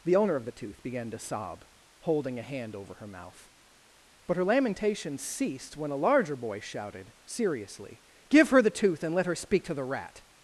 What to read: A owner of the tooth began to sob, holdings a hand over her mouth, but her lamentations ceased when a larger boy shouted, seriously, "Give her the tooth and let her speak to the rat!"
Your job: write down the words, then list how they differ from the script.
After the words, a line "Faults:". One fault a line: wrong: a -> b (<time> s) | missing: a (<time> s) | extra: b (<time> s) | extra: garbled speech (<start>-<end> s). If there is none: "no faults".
The owner of the tooth began to sob, holding a hand over her mouth, but her lamentations ceased when a larger boy shouted, seriously, "Give her the tooth and let her speak to the rat!"
Faults:
wrong: A -> The (0.0 s)
wrong: holdings -> holding (2.0 s)